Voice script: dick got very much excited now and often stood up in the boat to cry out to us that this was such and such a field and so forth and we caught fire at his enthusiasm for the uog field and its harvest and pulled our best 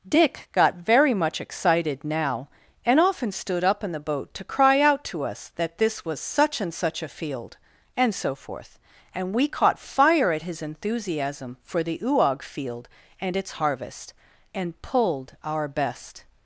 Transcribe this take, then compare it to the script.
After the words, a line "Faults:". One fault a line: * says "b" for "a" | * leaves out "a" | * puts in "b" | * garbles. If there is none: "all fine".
dick got very much excited now and often stood up in the boat to cry out to us that this was such and such a field and so forth and we caught fire at his enthusiasm for the uog field and its harvest and pulled our best
Faults:
all fine